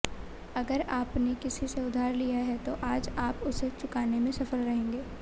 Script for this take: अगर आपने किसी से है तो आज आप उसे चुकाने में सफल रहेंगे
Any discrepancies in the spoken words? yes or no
yes